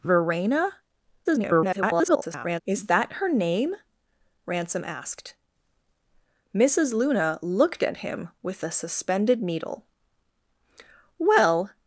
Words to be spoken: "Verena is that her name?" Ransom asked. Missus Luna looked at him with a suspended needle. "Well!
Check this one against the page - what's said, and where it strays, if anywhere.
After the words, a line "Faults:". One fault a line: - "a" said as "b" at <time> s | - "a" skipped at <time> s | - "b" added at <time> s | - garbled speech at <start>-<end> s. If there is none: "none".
"Verena [garbled] is that her name?" Ransom asked. Missus Luna looked at him with a suspended needle. "Well!
Faults:
- garbled speech at 1.2-2.6 s